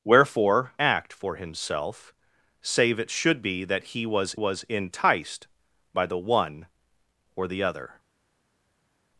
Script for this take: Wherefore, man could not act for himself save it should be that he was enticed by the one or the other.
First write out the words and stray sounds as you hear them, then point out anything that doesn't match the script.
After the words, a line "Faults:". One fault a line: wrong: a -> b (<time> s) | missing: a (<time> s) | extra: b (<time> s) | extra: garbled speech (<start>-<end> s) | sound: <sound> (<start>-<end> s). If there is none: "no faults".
Wherefore, act for himself save it should be that he was was enticed by the one or the other.
Faults:
missing: man could not (0.7 s)
extra: was (4.3 s)